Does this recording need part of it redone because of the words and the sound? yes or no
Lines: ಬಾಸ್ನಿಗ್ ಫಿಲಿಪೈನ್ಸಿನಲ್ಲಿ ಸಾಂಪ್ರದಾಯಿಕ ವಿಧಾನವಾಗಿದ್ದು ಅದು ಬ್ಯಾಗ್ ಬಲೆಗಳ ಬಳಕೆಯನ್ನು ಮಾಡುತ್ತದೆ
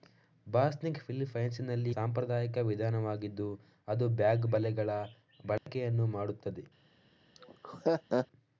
yes